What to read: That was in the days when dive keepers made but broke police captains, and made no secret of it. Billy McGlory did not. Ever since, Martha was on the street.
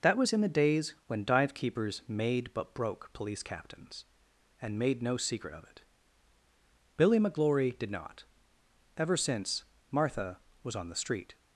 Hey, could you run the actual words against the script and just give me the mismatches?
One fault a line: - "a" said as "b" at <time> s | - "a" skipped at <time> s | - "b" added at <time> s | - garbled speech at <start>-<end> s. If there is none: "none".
none